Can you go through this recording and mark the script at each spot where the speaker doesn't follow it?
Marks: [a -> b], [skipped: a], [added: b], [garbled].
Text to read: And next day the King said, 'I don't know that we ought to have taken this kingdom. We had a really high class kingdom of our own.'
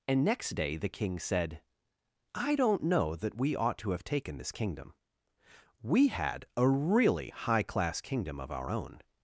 And next day the King said, 'I don't know that we ought to have taken this kingdom. We had a really high class kingdom of our own.'